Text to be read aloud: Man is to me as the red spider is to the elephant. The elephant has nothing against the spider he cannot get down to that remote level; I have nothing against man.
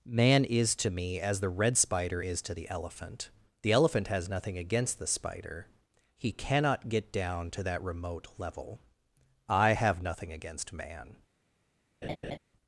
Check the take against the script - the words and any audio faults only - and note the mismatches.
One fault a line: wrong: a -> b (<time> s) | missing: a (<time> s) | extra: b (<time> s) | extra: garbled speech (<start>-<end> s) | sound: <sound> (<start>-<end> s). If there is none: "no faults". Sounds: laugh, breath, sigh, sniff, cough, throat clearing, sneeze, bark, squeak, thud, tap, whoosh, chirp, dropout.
sound: laugh (12.0-12.4 s)